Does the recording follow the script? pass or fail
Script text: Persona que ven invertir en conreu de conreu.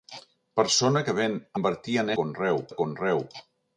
pass